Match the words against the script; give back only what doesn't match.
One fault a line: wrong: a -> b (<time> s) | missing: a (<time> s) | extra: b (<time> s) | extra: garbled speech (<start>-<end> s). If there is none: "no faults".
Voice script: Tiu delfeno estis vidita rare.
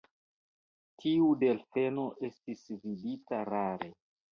no faults